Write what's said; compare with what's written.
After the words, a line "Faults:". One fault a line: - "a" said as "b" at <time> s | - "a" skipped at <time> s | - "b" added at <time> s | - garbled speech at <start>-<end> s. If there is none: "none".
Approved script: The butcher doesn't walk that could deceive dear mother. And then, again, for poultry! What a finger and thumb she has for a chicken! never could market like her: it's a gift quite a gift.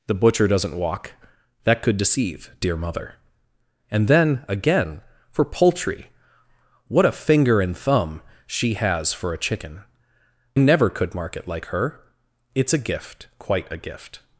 The butcher doesn't walk that could deceive dear mother. And then, again, for poultry! What a finger and thumb she has for a chicken! never could market like her: it's a gift quite a gift.
Faults:
none